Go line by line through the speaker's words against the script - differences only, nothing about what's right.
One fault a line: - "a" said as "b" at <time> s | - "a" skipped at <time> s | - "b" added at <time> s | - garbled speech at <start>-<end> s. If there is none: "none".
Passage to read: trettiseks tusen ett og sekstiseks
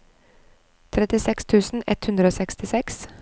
- "hundre" added at 2.1 s